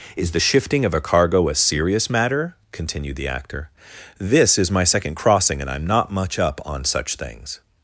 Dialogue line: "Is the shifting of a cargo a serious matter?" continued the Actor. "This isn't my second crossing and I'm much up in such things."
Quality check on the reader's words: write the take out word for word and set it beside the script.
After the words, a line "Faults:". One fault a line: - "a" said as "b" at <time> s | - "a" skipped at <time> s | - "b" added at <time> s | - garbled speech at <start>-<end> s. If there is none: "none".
"Is the shifting of a cargo a serious matter?" continued the Actor. "This is my second crossing and I'm not much up on such things."
Faults:
- "isn't" said as "is" at 4.6 s
- "not" added at 5.9 s
- "in" said as "on" at 6.6 s